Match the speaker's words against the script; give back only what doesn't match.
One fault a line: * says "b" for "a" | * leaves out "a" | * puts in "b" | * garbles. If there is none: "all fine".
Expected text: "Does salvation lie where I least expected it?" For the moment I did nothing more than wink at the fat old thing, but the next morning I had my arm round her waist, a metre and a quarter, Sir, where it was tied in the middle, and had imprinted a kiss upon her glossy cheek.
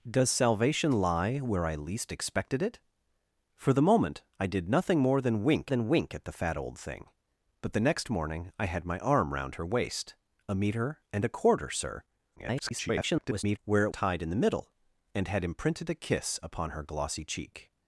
* puts in "than wink"
* garbles
* leaves out "was"